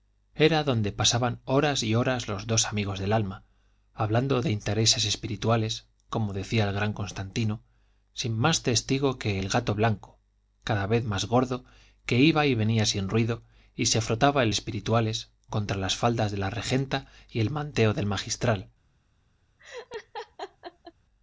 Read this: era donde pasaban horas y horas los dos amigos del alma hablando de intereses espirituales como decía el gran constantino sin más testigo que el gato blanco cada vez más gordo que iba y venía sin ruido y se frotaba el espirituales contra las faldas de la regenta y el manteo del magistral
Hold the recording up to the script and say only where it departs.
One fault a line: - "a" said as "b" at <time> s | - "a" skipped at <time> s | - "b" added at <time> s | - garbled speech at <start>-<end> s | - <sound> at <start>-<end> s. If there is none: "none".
- laugh at 19.6-20.9 s